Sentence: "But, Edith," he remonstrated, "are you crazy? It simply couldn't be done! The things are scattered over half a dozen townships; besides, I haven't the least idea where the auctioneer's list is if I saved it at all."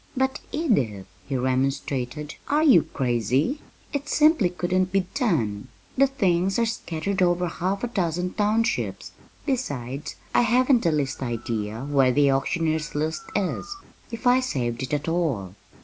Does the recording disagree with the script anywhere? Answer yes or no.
no